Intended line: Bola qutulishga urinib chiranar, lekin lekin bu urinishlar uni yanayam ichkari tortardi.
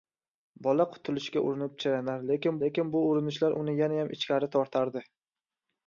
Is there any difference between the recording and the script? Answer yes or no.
no